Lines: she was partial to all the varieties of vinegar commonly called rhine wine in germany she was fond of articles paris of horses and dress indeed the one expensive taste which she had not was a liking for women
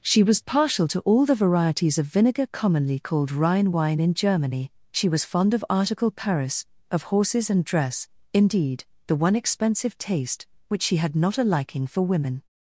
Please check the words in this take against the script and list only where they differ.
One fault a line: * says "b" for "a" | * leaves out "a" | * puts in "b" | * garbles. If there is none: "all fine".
* says "article" for "articles"
* leaves out "was"